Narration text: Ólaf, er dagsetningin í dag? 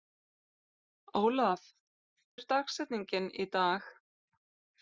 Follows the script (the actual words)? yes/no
yes